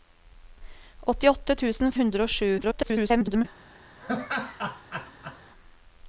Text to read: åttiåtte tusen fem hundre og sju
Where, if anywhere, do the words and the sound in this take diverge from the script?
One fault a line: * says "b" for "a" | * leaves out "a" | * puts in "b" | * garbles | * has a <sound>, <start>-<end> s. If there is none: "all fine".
* leaves out "fem"
* garbles
* has a laugh, 4.0-5.4 s